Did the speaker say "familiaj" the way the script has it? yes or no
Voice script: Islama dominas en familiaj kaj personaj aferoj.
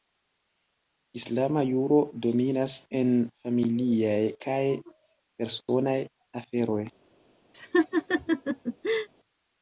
yes